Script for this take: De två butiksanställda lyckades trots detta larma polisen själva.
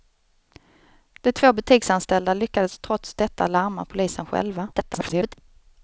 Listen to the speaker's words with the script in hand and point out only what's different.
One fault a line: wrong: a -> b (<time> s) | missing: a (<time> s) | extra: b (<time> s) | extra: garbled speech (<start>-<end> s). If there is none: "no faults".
extra: garbled speech (4.7-5.3 s)